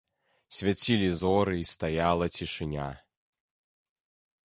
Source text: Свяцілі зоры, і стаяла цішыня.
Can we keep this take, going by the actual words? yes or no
yes